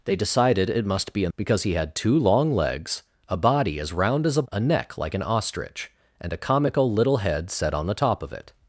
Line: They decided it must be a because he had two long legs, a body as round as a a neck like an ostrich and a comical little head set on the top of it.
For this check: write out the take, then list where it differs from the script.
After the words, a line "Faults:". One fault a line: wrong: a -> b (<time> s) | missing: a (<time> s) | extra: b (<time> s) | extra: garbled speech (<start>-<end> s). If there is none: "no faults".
They decided it must be a because he had two long legs, a body as round as a a neck like an ostrich and a comical little head set on the top of it.
Faults:
no faults